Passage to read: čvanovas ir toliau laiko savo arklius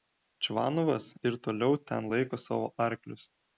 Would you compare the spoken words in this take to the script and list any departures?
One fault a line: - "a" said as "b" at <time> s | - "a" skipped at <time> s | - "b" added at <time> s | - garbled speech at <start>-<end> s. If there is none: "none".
- "ten" added at 1.9 s